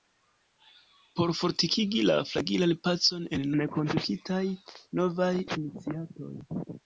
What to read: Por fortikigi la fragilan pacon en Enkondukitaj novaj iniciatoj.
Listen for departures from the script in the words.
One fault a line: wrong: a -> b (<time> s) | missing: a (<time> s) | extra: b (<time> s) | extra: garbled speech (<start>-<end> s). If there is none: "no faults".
no faults